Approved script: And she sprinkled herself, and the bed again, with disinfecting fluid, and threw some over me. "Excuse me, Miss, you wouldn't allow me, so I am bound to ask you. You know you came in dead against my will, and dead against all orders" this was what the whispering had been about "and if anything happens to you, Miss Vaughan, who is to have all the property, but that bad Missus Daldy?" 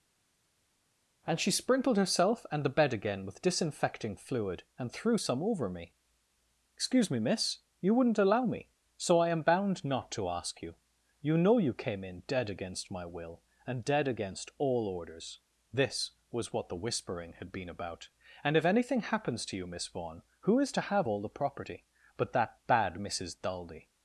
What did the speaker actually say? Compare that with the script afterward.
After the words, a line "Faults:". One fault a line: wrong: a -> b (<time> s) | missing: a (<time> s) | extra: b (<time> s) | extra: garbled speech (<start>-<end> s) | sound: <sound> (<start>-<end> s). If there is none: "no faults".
And she sprinkled herself, and the bed again, with disinfecting fluid, and threw some over me. "Excuse me, Miss, you wouldn't allow me, so I am bound not to ask you. You know you came in dead against my will, and dead against all orders" this was what the whispering had been about "and if anything happens to you, Miss Vaughan, who is to have all the property, but that bad Missus Daldy?"
Faults:
extra: not (9.8 s)